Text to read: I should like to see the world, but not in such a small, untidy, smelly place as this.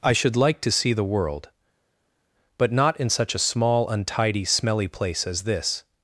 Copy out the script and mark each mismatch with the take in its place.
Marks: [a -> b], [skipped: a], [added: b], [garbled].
I should like to see the world, but not in such a small, untidy, smelly place as this.